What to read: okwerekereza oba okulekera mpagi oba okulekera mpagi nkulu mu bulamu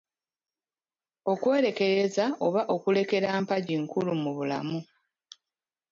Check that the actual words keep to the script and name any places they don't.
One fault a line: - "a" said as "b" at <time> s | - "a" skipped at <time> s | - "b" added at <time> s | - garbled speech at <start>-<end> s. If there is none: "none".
- "oba okulekera mpagi" skipped at 3.7 s